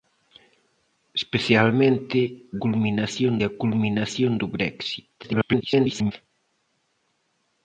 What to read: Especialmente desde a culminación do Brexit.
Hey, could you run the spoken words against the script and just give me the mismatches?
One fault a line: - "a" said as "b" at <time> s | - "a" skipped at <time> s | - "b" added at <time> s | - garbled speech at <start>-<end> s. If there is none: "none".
- "desde" said as "culminación" at 2.6 s
- garbled speech at 5.2-6.1 s